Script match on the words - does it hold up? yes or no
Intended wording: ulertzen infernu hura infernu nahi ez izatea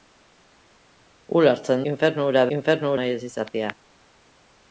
yes